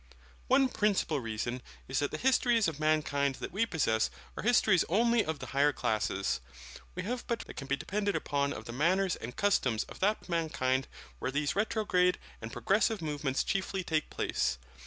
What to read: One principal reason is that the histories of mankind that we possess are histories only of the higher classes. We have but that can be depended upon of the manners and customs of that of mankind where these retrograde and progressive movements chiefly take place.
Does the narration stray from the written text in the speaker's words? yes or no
no